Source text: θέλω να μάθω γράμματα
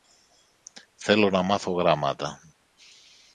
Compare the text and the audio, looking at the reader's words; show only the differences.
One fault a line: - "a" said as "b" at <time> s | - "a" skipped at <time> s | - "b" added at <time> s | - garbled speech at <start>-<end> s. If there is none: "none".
none